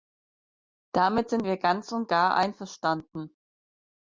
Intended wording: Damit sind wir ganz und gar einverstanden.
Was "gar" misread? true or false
false